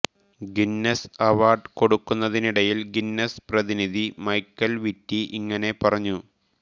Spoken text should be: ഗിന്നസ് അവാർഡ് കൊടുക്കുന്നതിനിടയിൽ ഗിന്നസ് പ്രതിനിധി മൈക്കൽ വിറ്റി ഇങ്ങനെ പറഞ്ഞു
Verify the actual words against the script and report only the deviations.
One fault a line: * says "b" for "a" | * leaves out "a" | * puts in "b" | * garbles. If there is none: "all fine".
all fine